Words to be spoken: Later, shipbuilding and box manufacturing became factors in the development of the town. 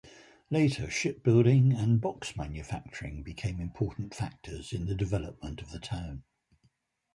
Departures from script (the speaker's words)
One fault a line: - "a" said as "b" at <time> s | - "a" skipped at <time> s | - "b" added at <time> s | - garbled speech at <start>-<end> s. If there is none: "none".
- "important" added at 3.6 s